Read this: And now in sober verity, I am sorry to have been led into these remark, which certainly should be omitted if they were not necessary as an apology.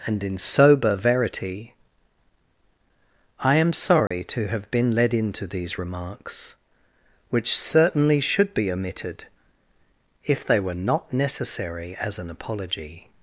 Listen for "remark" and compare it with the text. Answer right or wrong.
wrong